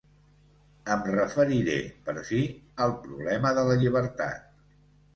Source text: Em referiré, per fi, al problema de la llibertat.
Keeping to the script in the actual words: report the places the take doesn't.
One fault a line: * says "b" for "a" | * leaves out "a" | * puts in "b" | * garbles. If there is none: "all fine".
all fine